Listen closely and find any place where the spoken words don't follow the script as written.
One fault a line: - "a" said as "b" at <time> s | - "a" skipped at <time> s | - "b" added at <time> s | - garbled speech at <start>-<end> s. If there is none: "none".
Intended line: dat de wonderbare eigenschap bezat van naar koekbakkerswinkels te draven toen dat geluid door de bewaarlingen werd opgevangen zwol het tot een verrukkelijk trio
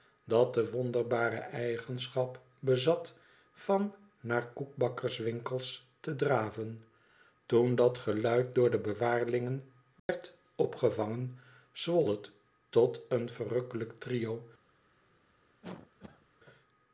none